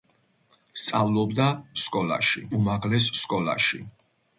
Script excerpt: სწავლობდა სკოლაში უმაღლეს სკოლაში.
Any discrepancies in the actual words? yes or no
no